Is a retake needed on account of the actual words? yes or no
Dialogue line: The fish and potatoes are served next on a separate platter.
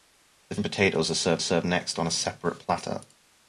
yes